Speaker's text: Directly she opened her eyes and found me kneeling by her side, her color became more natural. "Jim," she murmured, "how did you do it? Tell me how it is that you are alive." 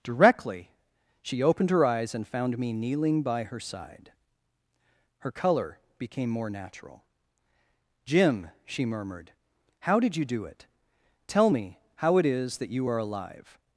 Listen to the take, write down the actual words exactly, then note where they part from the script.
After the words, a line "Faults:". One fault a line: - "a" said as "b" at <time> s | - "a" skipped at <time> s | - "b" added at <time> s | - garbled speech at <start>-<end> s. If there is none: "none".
Directly she opened her eyes and found me kneeling by her side, her color became more natural. "Jim," she murmured, "how did you do it? Tell me how it is that you are alive."
Faults:
none